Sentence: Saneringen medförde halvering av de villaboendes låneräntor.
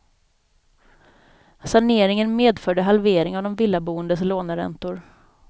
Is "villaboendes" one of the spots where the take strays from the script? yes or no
no